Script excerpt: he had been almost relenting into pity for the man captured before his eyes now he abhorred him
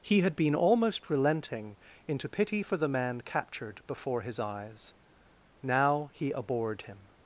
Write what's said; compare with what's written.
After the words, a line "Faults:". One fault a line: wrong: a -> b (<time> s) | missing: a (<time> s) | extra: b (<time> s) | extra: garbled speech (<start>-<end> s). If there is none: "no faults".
he had been almost relenting into pity for the man captured before his eyes now he abhorred him
Faults:
no faults